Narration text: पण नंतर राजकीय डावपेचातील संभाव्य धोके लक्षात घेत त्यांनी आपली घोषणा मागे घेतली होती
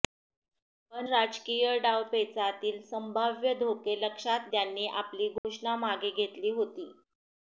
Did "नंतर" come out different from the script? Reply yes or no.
yes